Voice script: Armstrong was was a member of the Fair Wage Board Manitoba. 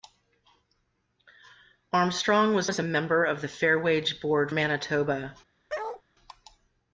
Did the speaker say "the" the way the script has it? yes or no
yes